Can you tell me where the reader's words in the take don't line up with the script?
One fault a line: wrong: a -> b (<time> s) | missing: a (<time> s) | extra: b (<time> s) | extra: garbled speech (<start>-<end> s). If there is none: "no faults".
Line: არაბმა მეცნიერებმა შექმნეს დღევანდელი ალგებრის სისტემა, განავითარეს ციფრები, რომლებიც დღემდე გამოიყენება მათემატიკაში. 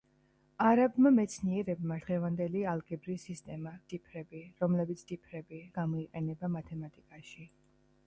missing: შექმნეს (2.0 s)
missing: განავითარეს (3.7 s)
wrong: დღემდე -> ციფრები (5.1 s)